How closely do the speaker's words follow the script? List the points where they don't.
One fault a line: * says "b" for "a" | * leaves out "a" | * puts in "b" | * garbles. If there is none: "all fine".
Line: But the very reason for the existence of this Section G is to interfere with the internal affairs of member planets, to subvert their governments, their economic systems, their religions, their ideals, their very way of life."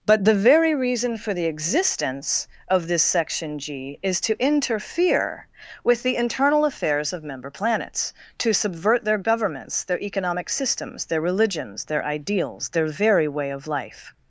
all fine